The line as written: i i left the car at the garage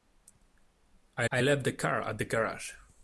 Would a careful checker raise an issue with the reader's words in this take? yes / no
no